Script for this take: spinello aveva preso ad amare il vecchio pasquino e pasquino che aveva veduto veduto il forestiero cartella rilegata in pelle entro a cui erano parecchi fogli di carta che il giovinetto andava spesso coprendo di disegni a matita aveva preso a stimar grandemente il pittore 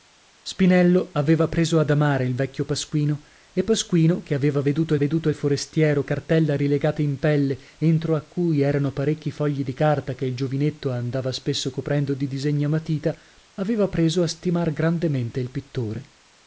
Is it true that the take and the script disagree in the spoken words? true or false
false